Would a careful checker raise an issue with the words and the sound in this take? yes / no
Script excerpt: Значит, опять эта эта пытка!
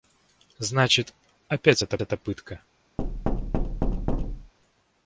yes